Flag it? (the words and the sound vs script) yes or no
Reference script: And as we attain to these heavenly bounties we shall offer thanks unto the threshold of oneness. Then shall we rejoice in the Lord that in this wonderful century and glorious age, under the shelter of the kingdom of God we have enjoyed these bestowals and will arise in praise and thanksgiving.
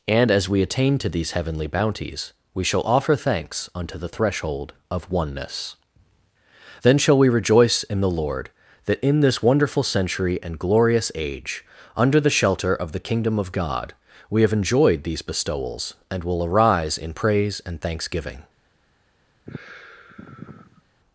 yes